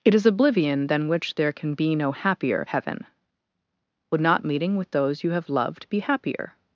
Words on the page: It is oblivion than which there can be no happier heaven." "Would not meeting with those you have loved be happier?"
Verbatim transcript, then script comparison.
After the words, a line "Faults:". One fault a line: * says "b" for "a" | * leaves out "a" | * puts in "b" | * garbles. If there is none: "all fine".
It is oblivion than which there can be no happier heaven." "Would not meeting with those you have loved be happier?"
Faults:
all fine